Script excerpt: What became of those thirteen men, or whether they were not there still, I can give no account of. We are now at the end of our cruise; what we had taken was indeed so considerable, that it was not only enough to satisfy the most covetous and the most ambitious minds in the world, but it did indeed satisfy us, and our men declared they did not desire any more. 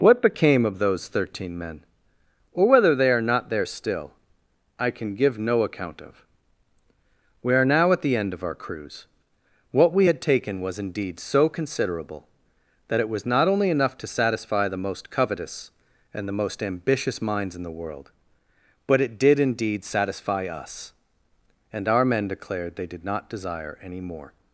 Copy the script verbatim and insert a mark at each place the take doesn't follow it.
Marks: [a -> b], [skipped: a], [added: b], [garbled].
What became of those thirteen men, or whether they [were -> are] not there still, I can give no account of. We are now at the end of our cruise; what we had taken was indeed so considerable, that it was not only enough to satisfy the most covetous and the most ambitious minds in the world, but it did indeed satisfy us, and our men declared they did not desire any more.